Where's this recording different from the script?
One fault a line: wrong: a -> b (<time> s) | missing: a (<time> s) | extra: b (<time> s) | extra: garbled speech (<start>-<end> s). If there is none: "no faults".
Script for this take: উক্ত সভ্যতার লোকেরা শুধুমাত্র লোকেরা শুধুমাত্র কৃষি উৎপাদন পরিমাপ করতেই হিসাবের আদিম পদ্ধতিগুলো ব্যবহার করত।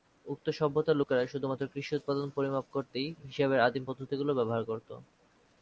missing: লোকেরা শুধুমাত্র (1.6 s)